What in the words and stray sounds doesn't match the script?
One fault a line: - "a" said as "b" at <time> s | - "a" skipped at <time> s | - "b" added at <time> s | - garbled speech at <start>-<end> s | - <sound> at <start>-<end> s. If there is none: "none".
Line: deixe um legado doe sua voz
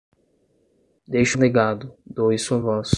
none